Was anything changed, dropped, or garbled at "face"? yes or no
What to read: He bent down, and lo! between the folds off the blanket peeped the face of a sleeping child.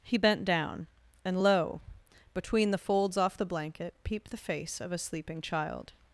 no